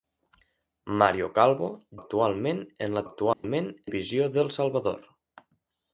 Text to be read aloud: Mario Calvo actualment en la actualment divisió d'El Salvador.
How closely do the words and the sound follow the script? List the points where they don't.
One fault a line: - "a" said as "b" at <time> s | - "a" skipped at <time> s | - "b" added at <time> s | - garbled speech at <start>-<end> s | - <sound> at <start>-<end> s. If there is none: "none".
- dropout at 3.3-3.4 s